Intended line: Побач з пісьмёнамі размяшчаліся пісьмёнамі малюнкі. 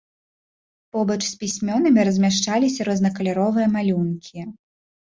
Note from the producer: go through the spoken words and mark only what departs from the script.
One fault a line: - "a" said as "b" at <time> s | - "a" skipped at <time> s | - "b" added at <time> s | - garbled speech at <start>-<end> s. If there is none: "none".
- "пісьмёнамі" said as "рознакаляровыя" at 2.9 s